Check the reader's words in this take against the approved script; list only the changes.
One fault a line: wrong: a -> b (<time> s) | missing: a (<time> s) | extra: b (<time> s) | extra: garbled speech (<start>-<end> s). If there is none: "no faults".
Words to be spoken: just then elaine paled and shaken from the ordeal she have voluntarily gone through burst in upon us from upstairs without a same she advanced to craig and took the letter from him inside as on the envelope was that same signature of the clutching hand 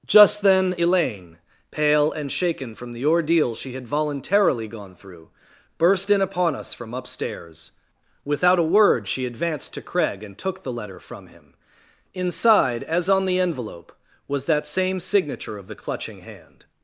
wrong: paled -> pale (1.7 s)
wrong: have -> had (3.7 s)
wrong: same -> word (8.7 s)